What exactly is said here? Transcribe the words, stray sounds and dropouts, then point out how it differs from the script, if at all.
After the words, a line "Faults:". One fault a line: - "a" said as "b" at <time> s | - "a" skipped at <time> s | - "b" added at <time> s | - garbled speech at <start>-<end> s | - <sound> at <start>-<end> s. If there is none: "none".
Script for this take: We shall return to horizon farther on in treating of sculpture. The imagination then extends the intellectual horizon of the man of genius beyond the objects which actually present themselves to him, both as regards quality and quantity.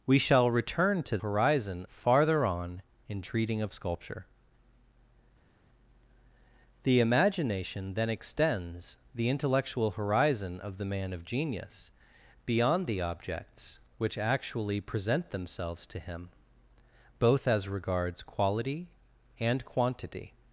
We shall return to horizon farther on in treating of sculpture. The imagination then extends the intellectual horizon of the man of genius beyond the objects which actually present themselves to him, both as regards quality and quantity.
Faults:
none